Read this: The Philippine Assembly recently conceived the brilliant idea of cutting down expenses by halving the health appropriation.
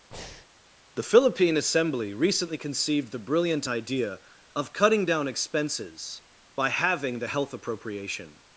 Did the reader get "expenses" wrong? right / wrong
right